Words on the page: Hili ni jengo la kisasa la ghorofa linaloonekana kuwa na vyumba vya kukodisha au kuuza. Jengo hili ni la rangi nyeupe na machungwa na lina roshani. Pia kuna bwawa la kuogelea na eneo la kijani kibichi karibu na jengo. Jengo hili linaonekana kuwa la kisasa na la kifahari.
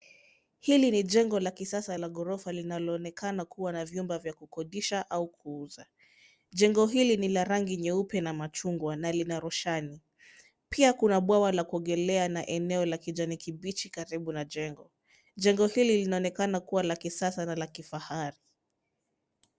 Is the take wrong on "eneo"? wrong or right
right